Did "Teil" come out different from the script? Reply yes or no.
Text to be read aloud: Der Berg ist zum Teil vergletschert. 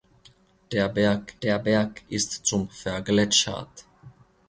yes